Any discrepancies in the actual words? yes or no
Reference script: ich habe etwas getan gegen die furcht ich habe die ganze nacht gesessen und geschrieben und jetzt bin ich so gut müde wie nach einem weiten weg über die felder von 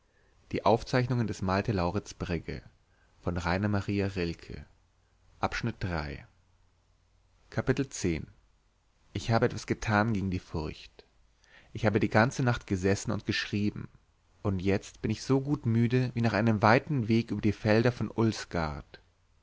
no